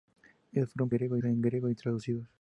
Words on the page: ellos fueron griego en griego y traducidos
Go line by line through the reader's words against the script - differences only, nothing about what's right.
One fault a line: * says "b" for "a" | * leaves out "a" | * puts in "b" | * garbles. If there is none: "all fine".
all fine